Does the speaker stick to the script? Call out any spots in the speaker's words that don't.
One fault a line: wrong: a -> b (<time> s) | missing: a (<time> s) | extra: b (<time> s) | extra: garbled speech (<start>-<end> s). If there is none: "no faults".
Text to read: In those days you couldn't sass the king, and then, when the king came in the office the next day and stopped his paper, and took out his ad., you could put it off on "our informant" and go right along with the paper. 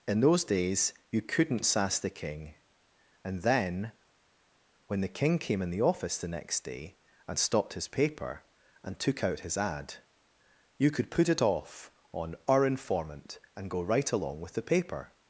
no faults